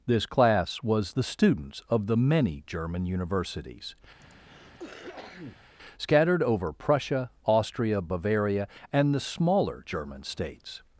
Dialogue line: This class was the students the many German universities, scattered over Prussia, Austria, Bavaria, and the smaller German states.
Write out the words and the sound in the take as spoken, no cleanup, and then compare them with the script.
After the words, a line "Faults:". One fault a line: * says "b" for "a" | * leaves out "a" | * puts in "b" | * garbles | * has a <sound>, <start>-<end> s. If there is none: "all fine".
This class was the students of the many German universities, scattered over Prussia, Austria, Bavaria, and the smaller German states.
Faults:
* puts in "of"
* has a cough, 4.2-5.7 s